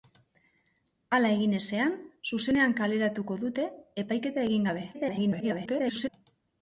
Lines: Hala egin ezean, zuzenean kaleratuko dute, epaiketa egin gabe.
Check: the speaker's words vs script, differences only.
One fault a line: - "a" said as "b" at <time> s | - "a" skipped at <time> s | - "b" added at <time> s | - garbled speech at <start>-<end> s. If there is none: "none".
- garbled speech at 4.9-6.1 s